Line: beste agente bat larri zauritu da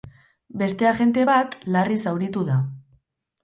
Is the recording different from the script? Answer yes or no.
no